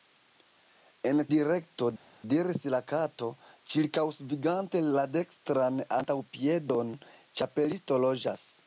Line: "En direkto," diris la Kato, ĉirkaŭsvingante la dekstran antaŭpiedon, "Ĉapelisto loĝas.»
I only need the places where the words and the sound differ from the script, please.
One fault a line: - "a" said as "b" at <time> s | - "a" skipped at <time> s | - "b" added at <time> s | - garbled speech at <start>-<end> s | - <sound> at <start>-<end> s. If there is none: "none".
none